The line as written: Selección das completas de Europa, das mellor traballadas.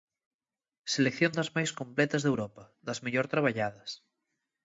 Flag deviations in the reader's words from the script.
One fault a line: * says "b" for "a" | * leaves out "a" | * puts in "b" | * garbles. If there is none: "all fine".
* puts in "máis"